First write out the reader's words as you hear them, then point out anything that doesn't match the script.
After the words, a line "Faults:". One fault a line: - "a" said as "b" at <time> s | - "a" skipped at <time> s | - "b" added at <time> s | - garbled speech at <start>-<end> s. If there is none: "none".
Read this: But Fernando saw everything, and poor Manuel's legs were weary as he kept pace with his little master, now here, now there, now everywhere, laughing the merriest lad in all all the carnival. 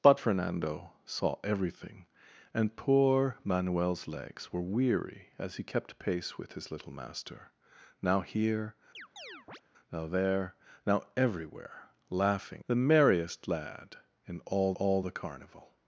But Fernando saw everything, and poor Manuel's legs were weary as he kept pace with his little master, now here, now there, now everywhere, laughing the merriest lad in all all the carnival.
Faults:
none